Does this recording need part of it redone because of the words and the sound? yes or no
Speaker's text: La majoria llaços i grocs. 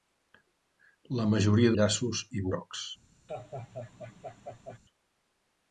yes